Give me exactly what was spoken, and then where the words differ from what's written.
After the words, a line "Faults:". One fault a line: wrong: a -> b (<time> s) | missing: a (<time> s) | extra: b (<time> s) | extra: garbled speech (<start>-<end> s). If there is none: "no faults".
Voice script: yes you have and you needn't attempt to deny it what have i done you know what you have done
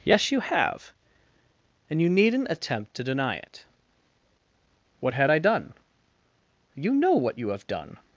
yes you have and you needn't attempt to deny it what had i done you know what you have done
Faults:
wrong: have -> had (5.1 s)